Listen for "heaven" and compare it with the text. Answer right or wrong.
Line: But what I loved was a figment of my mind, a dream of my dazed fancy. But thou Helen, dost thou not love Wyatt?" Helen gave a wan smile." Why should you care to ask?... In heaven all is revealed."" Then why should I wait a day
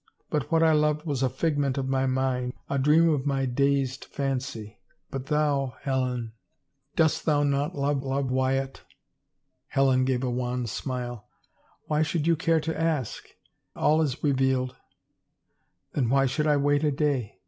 wrong